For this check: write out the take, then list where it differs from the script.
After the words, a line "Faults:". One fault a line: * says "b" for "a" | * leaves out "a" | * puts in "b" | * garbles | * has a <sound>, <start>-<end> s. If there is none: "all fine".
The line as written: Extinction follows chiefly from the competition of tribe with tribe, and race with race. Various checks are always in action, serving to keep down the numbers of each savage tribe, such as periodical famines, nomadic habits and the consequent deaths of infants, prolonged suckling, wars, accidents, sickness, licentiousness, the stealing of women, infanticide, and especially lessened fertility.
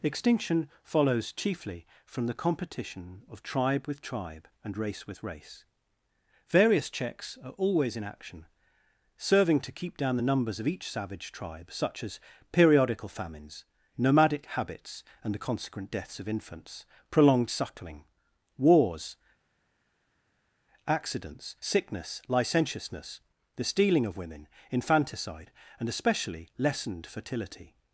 Extinction follows chiefly from the competition of tribe with tribe, and race with race. Various checks are always in action, serving to keep down the numbers of each savage tribe, such as periodical famines, nomadic habits and the consequent deaths of infants, prolonged suckling, wars, accidents, sickness, licentiousness, the stealing of women, infanticide, and especially lessened fertility.
Faults:
all fine